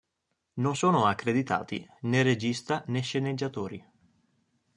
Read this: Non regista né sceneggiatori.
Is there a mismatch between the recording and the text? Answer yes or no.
yes